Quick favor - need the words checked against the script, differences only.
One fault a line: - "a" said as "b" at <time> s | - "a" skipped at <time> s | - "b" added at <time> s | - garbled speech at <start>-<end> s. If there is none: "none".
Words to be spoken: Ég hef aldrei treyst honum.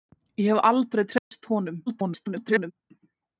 - garbled speech at 1.9-2.7 s